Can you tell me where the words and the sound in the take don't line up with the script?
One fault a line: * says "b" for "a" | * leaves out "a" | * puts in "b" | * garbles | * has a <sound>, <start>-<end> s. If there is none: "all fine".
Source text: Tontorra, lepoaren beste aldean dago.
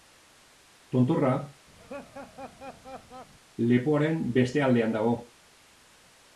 * has a laugh, 1.8-3.3 s